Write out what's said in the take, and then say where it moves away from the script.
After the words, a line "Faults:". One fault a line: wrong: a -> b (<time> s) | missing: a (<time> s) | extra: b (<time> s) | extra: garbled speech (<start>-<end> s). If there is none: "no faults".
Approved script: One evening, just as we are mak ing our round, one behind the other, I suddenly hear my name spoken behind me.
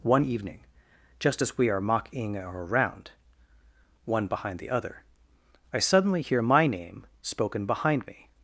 One evening, just as we are mocking our round, one behind the other, I suddenly hear my name spoken behind me.
Faults:
wrong: mak ing -> mocking (1.8 s)